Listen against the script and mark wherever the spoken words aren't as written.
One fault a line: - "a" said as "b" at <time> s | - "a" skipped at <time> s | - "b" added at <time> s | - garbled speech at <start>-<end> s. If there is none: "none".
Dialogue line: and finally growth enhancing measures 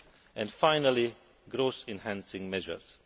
none